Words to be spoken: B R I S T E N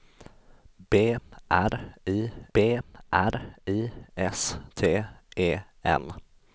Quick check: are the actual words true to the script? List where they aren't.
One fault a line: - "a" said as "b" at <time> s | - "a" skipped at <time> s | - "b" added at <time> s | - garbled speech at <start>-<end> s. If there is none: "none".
- "b R I" added at 2.5 s